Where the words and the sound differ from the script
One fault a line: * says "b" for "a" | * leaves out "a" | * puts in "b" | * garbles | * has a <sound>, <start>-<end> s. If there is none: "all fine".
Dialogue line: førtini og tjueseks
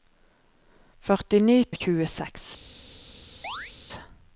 * has a chirp, 3.4-3.7 s